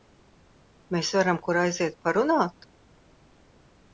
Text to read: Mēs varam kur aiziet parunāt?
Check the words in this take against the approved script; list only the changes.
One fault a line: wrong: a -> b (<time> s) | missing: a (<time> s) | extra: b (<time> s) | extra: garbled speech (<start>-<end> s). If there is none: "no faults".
no faults